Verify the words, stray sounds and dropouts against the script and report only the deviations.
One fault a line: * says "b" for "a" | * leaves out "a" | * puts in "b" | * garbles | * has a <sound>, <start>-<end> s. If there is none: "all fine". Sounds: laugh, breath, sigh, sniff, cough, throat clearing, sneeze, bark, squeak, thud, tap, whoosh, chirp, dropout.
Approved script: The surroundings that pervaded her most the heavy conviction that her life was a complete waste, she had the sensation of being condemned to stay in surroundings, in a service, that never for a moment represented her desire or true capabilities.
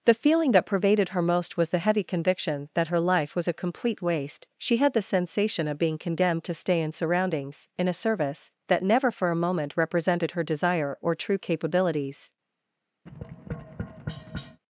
* says "feeling" for "surroundings"
* puts in "was"
* has a tap, 13.1-14.6 s